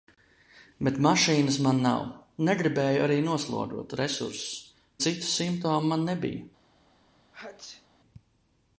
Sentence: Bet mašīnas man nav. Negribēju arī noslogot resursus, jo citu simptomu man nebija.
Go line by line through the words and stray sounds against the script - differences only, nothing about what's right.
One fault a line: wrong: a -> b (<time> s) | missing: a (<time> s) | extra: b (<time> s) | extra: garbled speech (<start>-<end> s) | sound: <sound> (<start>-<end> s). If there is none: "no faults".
missing: jo (4.7 s)
sound: sneeze (7.3-7.9 s)